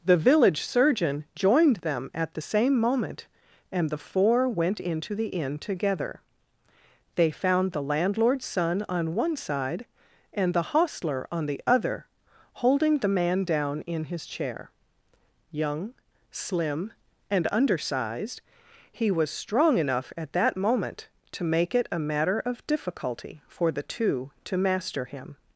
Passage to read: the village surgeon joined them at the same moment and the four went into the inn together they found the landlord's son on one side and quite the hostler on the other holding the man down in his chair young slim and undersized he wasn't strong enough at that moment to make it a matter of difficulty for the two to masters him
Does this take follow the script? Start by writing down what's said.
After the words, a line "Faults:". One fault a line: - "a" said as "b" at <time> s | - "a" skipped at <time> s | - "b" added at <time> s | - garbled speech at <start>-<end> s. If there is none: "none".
the village surgeon joined them at the same moment and the four went into the inn together they found the landlord's son on one side and the hostler on the other holding the man down in his chair young slim and undersized he was strong enough at that moment to make it a matter of difficulty for the two to master him
Faults:
- "quite" skipped at 10.5 s
- "wasn't" said as "was" at 19.1 s
- "masters" said as "master" at 24.6 s